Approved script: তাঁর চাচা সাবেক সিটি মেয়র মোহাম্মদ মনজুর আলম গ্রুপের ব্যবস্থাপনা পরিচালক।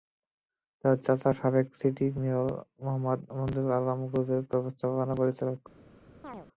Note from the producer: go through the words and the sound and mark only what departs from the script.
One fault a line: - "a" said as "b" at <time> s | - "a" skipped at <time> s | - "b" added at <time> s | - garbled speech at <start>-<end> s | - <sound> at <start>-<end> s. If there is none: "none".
- chirp at 6.2-6.5 s